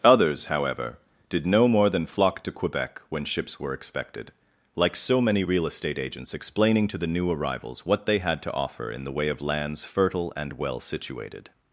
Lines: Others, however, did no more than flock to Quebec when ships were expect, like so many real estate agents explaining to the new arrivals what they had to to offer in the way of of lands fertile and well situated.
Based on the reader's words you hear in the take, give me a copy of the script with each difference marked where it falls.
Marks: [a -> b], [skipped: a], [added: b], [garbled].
Others, however, did no more than flock to Quebec when ships were [expect, -> expected] like so many real estate agents explaining to the new arrivals what they had to [skipped: to] offer in the way of [skipped: of] lands fertile and well situated.